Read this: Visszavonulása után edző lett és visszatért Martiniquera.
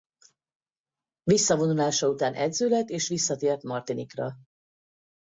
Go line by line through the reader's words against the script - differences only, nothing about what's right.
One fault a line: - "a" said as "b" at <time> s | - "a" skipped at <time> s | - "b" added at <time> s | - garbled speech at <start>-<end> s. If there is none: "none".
none